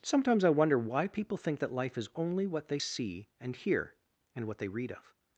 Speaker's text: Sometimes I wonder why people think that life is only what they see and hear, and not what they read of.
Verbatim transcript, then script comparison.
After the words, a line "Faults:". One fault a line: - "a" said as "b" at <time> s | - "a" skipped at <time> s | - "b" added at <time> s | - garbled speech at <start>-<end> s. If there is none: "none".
Sometimes I wonder why people think that life is only what they see and hear, and what they read of.
Faults:
- "not" skipped at 4.5 s